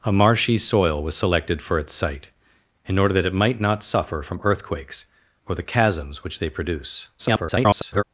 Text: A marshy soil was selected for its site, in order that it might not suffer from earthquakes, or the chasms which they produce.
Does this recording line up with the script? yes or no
no